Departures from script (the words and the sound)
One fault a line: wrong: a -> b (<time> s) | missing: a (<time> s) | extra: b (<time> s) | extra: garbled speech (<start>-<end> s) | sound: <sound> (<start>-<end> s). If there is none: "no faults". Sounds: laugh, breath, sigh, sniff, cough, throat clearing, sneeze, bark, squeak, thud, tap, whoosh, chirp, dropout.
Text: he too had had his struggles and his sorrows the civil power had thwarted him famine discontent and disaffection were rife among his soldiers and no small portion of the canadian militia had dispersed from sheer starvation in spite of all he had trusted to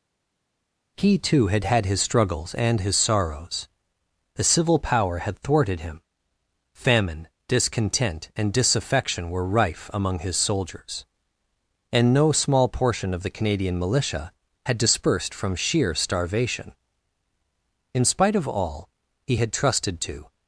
no faults